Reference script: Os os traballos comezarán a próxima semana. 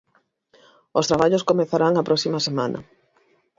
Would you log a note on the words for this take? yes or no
yes